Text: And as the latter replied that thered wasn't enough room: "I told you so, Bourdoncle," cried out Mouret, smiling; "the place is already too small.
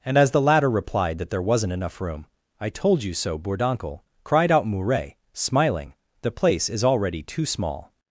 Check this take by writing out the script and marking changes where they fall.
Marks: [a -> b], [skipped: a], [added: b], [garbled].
And as the latter replied that [thered -> there] wasn't enough room: "I told you so, Bourdoncle," cried out Mouret, smiling; "the place is already too small.